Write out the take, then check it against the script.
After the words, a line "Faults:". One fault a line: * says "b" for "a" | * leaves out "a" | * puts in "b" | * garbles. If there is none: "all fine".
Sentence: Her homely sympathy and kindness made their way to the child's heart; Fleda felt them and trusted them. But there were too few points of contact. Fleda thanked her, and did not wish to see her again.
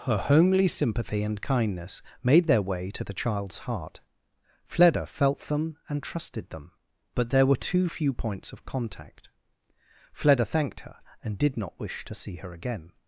Her homely sympathy and kindness made their way to the child's heart; Fleda felt them and trusted them. But there were too few points of contact. Fleda thanked her, and did not wish to see her again.
Faults:
all fine